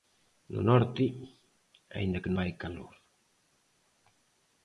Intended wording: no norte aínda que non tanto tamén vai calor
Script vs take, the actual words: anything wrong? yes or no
yes